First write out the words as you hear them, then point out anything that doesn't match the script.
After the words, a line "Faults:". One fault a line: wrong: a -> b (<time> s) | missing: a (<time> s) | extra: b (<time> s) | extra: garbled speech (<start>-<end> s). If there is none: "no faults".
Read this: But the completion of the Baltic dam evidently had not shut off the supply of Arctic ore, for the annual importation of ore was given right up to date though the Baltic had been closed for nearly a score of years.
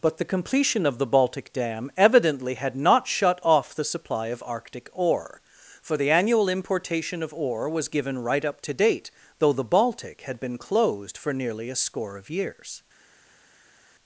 But the completion of the Baltic dam evidently had not shut off the supply of Arctic ore, for the annual importation of ore was given right up to date though the Baltic had been closed for nearly a score of years.
Faults:
no faults